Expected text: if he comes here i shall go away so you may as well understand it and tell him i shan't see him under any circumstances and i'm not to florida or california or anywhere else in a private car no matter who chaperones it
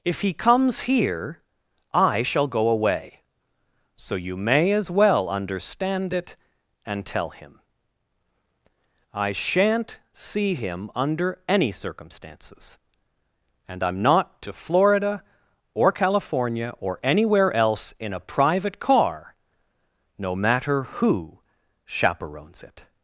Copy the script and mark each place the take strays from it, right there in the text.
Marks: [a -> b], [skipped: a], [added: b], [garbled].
if he comes here i shall go away so you may as well understand it and tell him i shan't see him under any circumstances and i'm not to florida or california or anywhere else in a private car no matter who chaperones it